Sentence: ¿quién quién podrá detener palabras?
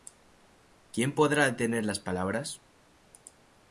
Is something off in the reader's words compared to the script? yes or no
yes